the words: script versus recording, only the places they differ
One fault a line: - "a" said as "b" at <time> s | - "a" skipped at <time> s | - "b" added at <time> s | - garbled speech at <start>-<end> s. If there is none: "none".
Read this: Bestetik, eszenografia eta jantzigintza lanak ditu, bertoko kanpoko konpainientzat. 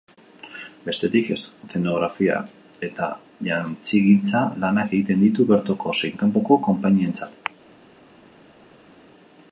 - "egiten" added at 5.0 s
- "zein" added at 6.0 s